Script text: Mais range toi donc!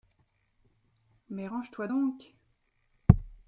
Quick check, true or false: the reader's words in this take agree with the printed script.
true